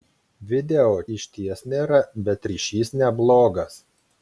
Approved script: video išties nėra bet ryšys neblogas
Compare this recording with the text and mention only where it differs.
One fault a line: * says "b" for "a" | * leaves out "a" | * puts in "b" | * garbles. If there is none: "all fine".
all fine